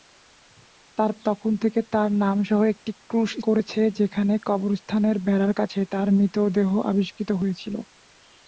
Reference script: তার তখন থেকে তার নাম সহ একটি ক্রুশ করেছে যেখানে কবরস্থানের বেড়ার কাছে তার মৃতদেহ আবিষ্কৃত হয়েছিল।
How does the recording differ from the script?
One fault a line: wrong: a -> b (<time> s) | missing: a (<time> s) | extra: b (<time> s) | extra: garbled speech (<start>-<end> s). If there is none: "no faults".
no faults